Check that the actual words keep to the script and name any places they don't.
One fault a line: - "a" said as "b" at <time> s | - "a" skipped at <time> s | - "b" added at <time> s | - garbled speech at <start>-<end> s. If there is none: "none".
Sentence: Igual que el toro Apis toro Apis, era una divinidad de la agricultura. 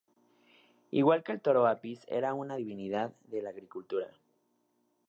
- "toro Apis" skipped at 2.0 s